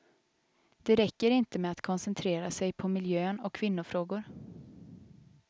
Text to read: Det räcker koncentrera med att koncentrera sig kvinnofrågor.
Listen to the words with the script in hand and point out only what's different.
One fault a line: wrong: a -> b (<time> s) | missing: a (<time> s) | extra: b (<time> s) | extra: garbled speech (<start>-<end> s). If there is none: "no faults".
wrong: koncentrera -> inte (1.3 s)
extra: på miljön och (2.7 s)